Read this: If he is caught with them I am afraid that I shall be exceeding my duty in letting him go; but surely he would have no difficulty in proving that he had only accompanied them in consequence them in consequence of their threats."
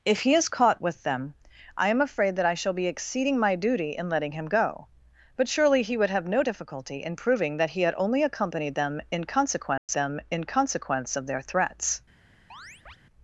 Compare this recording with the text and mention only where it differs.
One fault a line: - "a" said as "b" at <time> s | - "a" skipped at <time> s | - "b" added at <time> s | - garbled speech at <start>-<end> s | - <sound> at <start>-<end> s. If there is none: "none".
- dropout at 9.8-9.9 s
- chirp at 12.5-13.0 s